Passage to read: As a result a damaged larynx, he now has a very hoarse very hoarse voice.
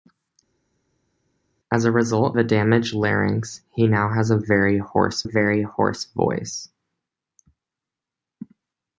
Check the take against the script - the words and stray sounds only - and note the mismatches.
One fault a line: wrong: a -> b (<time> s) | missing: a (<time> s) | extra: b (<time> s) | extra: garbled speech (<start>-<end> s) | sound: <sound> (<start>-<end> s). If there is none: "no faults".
no faults